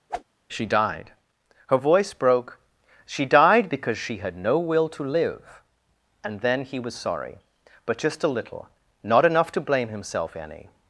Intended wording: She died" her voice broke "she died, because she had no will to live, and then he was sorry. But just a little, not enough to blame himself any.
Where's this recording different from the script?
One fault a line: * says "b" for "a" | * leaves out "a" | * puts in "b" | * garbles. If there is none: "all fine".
all fine